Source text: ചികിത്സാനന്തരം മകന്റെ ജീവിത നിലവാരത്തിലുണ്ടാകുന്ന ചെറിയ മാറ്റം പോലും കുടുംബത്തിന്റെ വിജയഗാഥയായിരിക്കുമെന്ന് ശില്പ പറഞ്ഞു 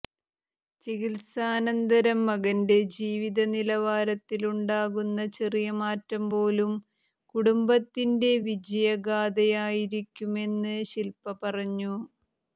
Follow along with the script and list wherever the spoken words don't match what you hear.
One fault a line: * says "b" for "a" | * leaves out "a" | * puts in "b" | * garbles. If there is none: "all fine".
all fine